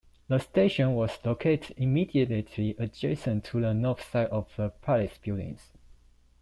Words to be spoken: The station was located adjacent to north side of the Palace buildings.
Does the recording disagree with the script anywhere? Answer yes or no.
yes